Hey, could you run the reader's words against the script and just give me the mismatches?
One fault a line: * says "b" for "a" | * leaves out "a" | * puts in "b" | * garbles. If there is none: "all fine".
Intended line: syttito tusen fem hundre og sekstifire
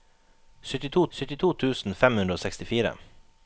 * puts in "syttito"